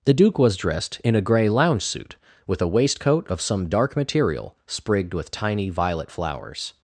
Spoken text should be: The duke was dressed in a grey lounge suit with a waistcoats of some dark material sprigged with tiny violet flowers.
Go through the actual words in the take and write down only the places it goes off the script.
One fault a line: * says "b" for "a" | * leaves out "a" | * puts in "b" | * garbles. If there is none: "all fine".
* says "waistcoat" for "waistcoats"